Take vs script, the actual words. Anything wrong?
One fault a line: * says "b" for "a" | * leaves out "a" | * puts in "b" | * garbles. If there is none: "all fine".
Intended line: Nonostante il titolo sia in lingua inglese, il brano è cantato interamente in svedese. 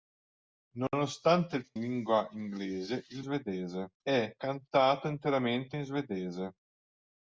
* leaves out "titolo sia in"
* says "svedese" for "brano"